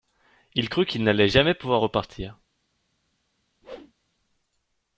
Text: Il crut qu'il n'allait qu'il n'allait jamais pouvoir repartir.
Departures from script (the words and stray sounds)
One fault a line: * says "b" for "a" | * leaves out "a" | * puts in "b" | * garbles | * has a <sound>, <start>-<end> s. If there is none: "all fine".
* leaves out "qu'il n'allait"
* has a whoosh, 3.6-3.9 s